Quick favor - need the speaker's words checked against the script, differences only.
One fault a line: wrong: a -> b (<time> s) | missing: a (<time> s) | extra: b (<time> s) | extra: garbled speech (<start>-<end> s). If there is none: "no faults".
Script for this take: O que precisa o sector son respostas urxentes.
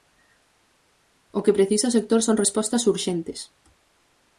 no faults